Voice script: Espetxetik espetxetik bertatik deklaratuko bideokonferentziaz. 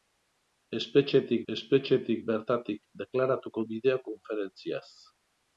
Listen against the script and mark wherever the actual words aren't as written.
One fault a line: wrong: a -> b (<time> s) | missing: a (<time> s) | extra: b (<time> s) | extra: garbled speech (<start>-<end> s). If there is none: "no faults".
no faults